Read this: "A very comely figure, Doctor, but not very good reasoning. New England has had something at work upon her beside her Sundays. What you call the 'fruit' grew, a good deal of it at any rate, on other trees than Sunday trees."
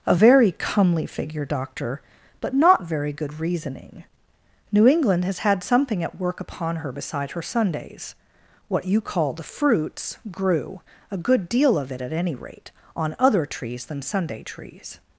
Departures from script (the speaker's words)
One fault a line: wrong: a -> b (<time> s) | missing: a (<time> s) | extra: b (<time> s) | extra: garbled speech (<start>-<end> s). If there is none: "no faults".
wrong: fruit -> fruits (9.4 s)